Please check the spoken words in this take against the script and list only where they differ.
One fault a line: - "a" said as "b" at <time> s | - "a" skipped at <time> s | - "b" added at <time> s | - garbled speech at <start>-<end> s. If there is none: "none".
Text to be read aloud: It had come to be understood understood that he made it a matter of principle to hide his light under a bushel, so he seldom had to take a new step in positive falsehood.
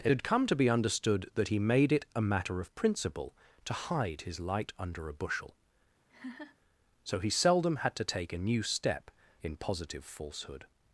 - "understood" skipped at 1.3 s